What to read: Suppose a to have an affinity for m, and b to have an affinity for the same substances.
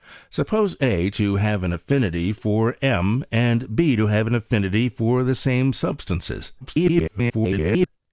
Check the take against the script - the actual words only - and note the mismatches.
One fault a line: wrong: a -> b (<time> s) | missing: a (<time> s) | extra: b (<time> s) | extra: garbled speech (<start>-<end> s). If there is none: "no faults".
extra: garbled speech (6.6-7.9 s)